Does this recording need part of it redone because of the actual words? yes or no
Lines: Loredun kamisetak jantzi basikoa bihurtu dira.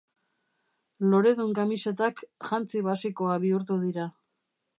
no